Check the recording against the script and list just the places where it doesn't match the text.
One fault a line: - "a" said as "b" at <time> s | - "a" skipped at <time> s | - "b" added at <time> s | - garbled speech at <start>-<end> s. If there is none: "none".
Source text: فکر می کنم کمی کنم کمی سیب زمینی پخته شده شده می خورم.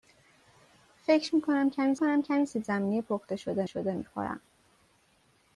none